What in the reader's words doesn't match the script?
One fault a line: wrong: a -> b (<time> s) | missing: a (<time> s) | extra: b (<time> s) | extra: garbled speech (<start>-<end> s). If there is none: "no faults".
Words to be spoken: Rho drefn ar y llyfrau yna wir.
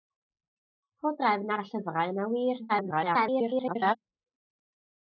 extra: garbled speech (2.7-4.0 s)